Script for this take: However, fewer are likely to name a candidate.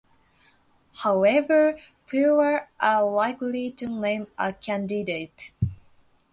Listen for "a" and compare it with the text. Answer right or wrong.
right